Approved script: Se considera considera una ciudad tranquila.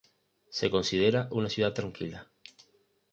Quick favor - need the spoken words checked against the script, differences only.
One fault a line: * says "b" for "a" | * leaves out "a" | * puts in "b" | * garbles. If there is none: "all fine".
* leaves out "considera"